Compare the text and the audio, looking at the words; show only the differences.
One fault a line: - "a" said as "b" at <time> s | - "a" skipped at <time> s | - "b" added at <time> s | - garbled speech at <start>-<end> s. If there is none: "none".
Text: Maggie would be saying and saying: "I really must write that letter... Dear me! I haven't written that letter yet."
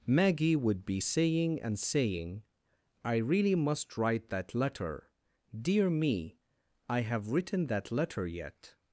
- "haven't" said as "have" at 7.0 s